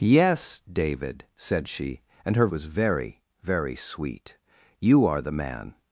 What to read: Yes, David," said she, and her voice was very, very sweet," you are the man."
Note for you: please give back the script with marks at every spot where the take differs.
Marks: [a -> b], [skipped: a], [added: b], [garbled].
Yes, David," said she, and her [skipped: voice] was very, very sweet," you are the man."